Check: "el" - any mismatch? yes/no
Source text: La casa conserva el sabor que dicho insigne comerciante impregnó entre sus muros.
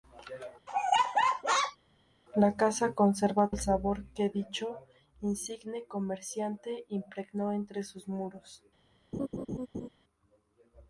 no